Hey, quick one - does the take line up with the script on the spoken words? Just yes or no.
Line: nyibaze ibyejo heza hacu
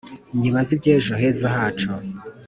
yes